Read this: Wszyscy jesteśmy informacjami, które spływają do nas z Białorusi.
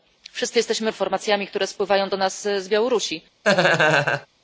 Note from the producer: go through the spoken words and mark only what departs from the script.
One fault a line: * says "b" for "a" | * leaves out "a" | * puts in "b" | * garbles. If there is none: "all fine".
all fine